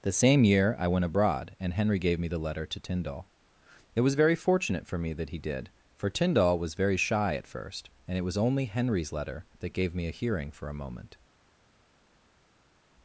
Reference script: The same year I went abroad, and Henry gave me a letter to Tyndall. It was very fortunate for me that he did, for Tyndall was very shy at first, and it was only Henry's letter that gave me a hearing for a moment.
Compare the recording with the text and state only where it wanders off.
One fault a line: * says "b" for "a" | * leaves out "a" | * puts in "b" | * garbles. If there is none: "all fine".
* says "the" for "a"